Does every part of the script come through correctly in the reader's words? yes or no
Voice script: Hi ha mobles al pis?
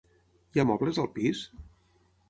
yes